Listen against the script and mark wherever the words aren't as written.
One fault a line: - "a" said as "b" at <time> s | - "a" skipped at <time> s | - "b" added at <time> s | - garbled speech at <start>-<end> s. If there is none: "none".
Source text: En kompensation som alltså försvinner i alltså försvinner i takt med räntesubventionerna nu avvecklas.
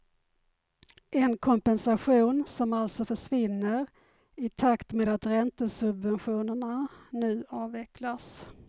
- "alltså försvinner i" skipped at 4.5 s
- "att" added at 5.1 s